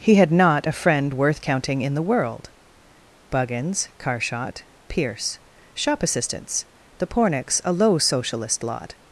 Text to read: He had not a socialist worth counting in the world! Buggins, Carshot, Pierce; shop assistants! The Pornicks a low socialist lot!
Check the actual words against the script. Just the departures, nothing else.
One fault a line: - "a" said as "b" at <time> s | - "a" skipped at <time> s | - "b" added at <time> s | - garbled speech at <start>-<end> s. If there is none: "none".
- "socialist" said as "friend" at 0.7 s